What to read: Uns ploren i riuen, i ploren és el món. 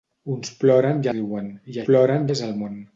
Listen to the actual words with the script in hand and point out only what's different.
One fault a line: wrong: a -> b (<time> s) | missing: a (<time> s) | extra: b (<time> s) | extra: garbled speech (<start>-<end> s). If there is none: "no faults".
no faults